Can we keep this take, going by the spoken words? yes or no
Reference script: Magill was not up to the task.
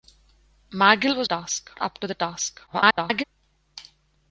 no